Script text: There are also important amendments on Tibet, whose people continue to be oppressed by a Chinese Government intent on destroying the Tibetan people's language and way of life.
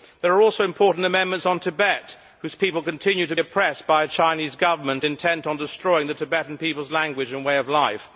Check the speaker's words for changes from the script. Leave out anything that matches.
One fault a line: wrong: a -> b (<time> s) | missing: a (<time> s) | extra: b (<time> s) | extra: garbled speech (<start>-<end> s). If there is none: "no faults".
missing: be (3.4 s)